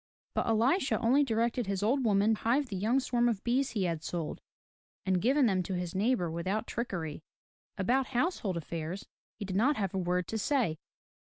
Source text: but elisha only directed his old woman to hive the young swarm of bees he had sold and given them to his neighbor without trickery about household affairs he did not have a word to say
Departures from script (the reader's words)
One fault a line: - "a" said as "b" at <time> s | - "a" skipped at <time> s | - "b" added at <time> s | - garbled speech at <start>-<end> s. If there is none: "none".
- "to" skipped at 2.3 s